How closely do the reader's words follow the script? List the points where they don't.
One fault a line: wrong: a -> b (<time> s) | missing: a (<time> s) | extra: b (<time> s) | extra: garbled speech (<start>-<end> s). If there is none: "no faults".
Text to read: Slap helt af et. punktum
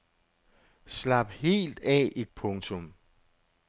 no faults